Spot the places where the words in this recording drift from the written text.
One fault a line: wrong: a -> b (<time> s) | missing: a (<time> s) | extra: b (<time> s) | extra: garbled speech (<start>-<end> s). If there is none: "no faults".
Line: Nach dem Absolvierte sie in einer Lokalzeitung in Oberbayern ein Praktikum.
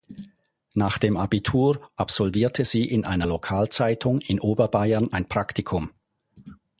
extra: Abitur (1.1 s)